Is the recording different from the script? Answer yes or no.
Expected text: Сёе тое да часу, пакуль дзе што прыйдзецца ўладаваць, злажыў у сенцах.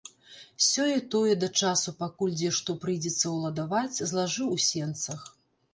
no